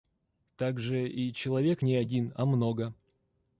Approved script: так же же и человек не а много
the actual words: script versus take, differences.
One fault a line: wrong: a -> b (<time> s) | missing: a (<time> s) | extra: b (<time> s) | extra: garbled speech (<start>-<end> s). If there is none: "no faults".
missing: же (1.1 s)
extra: один (2.0 s)